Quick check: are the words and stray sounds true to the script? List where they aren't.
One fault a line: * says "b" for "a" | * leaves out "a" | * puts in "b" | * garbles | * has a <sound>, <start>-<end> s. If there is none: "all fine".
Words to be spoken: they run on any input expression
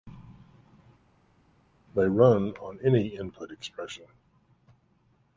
all fine